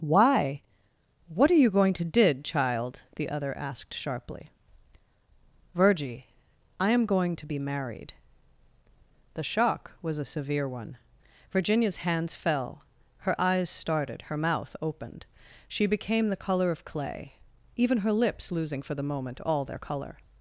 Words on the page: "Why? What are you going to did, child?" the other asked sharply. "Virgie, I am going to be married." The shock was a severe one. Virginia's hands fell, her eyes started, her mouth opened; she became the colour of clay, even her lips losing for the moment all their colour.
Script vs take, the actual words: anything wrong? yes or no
no